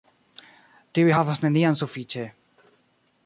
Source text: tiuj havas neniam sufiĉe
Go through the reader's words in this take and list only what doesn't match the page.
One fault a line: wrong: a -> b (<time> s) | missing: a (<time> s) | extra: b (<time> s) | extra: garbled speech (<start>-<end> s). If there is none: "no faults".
no faults